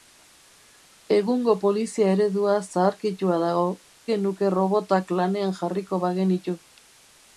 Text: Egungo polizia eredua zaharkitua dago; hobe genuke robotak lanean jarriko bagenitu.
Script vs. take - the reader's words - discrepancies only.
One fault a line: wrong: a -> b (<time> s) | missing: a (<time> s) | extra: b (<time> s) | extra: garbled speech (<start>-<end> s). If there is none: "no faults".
missing: hobe (3.7 s)